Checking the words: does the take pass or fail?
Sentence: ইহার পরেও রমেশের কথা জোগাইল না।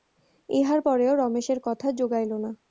pass